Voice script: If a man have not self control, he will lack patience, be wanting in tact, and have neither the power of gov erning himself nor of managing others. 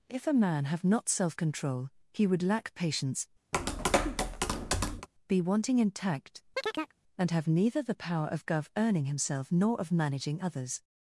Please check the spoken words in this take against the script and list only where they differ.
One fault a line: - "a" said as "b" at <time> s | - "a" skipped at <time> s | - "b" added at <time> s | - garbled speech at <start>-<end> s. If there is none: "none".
- "will" said as "would" at 2.3 s